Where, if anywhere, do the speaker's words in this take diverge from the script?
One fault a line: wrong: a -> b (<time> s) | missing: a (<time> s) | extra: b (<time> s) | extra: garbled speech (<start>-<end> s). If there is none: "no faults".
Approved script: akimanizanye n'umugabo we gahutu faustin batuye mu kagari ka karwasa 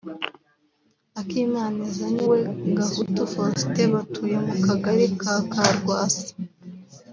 missing: n'umugabo (2.2 s)